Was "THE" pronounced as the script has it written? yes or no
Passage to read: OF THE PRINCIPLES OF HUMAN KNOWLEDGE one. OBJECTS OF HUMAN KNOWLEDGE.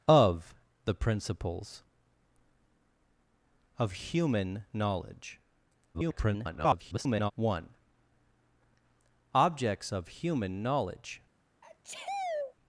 yes